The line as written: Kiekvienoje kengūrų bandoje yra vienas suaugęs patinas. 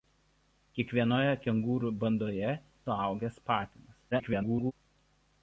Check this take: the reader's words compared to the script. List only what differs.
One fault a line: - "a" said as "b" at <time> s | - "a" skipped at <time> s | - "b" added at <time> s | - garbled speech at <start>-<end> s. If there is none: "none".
- "yra vienas" skipped at 2.5 s
- garbled speech at 4.1-4.7 s